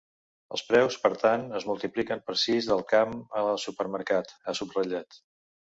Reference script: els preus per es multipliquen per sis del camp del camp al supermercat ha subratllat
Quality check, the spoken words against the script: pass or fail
fail